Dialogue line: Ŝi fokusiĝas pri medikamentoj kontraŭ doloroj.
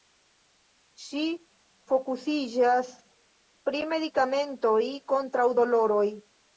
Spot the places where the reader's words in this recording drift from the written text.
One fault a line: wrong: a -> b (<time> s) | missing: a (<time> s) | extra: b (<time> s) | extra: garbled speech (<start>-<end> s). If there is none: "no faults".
no faults